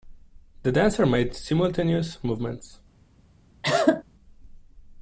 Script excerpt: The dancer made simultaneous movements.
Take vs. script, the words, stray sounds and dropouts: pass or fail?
fail